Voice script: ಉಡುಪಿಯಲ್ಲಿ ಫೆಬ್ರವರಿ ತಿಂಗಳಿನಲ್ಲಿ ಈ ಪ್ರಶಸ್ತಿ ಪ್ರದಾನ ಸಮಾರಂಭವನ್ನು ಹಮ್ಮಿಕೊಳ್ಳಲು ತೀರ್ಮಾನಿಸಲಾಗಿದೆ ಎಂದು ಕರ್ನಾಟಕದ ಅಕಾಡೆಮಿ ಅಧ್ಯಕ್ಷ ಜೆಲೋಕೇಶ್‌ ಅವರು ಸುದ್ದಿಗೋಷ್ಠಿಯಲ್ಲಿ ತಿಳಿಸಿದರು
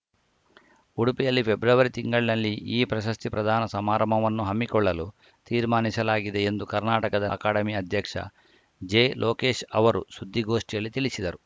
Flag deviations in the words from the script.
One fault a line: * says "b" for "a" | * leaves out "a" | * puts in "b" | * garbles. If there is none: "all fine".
all fine